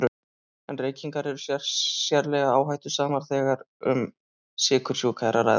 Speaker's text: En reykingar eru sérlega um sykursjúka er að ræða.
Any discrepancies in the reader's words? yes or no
yes